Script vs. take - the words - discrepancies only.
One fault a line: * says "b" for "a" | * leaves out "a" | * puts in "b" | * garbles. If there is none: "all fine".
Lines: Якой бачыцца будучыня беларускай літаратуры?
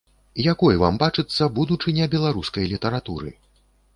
* puts in "вам"